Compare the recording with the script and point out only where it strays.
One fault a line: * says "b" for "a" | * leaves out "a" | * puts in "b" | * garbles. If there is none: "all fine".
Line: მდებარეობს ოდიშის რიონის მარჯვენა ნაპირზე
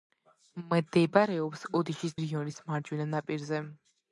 all fine